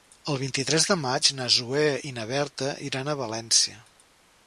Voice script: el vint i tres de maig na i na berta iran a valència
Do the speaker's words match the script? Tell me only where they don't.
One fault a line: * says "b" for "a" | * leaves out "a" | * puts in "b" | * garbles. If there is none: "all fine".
* puts in "zoè"